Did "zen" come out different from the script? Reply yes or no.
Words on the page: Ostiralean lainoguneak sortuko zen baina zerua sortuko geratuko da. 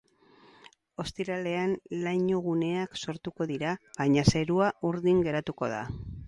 yes